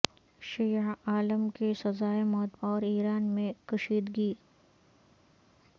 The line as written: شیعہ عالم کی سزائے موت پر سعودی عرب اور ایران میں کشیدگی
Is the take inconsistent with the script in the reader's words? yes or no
yes